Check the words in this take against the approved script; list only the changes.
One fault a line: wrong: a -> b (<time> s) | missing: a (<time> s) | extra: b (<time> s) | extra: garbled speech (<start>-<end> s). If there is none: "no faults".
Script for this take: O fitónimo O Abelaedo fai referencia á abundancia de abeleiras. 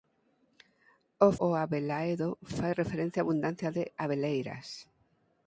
missing: fitónimo (1.3 s)